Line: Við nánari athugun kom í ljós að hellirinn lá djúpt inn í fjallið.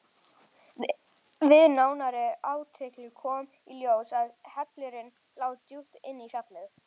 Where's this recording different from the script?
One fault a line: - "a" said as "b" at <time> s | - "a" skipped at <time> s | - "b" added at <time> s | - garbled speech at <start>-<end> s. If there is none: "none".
none